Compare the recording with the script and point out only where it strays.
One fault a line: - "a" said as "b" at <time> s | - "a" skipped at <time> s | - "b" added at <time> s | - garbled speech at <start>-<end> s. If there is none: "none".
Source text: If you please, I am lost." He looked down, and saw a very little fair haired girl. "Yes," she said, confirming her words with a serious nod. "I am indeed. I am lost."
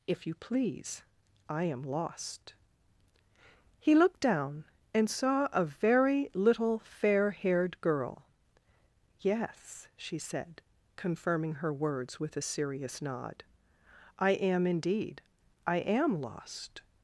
none